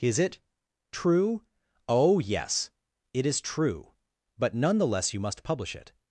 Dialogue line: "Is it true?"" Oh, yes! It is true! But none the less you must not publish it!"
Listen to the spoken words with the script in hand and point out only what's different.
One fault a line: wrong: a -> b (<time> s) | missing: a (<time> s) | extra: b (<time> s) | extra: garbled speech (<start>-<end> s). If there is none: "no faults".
missing: not (5.4 s)